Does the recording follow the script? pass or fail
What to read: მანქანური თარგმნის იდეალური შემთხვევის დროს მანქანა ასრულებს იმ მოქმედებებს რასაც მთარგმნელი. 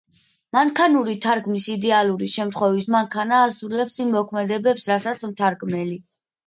fail